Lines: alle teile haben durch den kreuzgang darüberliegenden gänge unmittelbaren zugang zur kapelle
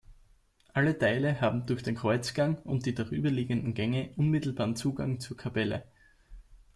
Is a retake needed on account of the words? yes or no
yes